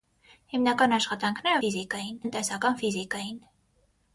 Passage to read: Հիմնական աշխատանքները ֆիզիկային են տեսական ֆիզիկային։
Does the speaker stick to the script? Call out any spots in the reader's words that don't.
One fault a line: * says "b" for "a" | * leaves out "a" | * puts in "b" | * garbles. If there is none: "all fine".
all fine